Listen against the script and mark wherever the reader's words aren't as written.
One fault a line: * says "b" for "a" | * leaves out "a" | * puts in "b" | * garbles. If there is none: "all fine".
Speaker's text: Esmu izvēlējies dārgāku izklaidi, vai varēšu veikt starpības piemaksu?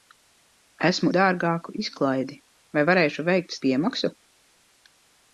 * leaves out "izvēlējies"
* leaves out "starpības"